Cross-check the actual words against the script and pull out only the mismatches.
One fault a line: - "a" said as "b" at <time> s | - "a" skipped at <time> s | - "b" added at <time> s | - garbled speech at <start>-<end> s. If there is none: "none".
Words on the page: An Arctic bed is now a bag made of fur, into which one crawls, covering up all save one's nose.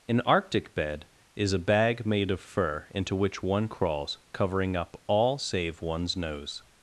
- "now" skipped at 1.5 s